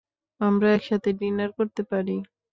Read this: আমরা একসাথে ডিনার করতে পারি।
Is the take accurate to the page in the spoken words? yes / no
yes